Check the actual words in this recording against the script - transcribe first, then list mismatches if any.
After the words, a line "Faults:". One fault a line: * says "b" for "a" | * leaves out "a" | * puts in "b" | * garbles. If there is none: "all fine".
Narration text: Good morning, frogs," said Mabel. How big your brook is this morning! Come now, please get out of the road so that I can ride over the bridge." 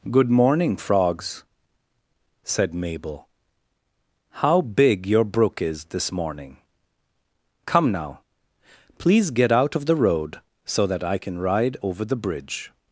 Good morning, frogs," said Mabel. How big your brook is this morning! Come now, please get out of the road so that I can ride over the bridge."
Faults:
all fine